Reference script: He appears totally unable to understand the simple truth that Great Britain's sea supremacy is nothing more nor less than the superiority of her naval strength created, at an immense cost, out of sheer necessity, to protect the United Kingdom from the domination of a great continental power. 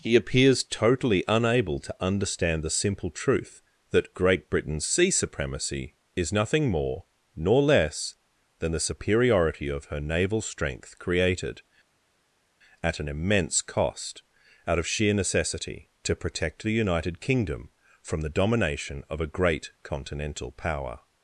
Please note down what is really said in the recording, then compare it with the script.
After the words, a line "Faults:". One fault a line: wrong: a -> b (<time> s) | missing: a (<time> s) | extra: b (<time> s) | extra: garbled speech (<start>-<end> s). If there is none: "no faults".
He appears totally unable to understand the simple truth that Great Britain's sea supremacy is nothing more nor less than the superiority of her naval strength created, at an immense cost, out of sheer necessity, to protect the United Kingdom from the domination of a great continental power.
Faults:
no faults